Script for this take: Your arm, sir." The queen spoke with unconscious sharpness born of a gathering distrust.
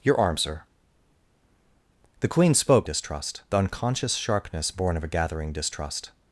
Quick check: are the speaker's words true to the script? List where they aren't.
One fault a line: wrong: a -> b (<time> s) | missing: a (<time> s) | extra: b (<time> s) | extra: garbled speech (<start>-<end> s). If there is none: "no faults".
wrong: with -> distrust (2.8 s)